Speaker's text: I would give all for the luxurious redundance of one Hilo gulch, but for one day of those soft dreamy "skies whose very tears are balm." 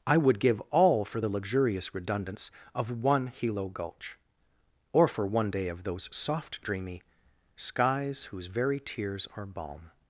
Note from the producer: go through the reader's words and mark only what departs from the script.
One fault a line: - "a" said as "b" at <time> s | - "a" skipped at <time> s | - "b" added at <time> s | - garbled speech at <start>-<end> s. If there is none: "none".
- "but" said as "or" at 4.9 s